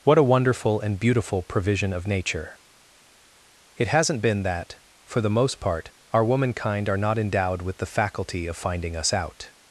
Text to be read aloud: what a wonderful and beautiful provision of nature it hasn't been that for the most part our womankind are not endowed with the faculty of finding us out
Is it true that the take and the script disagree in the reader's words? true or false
false